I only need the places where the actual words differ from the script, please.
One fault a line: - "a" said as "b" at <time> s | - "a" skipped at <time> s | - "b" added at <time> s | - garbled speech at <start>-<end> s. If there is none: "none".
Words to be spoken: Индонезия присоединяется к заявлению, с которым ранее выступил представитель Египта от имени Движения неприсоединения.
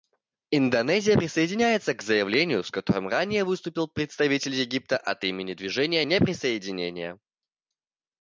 none